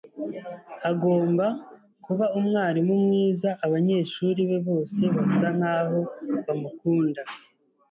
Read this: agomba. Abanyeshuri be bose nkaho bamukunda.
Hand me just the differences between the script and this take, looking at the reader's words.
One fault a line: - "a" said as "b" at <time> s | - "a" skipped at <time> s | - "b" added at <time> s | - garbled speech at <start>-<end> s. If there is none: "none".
- "kuba umwarimu mwiza" added at 2.0 s
- "basa" added at 5.2 s